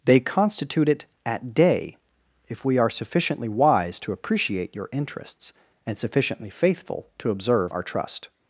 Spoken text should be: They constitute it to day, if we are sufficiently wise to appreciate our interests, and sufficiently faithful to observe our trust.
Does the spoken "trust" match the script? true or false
true